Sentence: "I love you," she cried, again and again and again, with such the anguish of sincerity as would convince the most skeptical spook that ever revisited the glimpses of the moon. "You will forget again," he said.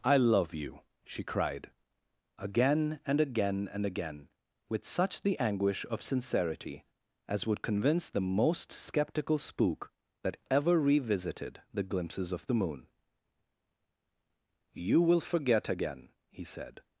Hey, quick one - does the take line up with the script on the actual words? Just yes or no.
yes